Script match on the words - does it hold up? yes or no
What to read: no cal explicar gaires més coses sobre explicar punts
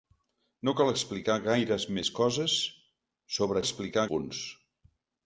yes